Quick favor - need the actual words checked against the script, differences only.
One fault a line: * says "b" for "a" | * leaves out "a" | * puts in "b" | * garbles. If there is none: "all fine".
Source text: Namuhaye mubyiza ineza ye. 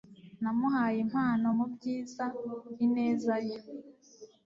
* puts in "impano"